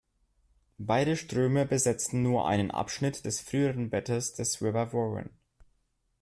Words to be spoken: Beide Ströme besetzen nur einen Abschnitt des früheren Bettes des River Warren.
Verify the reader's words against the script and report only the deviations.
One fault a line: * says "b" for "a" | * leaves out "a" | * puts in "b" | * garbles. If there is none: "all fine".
all fine